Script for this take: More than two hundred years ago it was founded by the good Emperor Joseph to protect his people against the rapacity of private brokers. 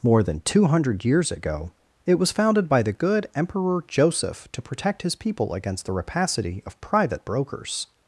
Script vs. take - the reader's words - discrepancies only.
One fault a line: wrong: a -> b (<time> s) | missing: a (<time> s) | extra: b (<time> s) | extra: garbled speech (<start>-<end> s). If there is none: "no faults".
no faults